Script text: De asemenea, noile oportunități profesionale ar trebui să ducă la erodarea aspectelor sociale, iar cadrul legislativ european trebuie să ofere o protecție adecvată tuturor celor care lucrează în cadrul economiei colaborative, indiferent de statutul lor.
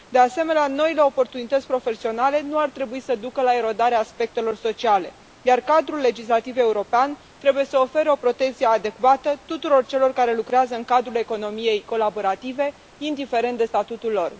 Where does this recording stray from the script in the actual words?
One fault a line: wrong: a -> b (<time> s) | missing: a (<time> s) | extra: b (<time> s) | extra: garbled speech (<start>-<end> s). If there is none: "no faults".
extra: nu (2.4 s)